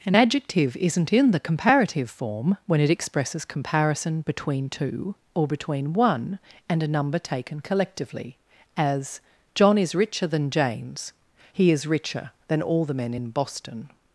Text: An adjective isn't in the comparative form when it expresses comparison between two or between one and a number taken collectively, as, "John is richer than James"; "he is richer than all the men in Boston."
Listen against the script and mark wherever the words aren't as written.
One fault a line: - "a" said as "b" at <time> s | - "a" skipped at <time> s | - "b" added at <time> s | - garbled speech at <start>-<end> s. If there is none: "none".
none